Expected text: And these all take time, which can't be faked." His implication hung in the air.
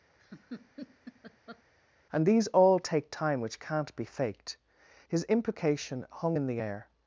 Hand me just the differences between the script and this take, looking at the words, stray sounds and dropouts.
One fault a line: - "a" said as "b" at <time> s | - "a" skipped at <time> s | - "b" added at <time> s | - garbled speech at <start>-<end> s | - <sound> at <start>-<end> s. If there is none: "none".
- laugh at 0.2-1.6 s